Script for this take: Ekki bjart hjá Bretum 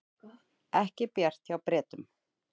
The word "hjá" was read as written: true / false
true